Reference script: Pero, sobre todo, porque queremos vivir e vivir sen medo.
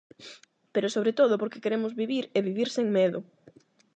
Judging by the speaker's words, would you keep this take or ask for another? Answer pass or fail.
pass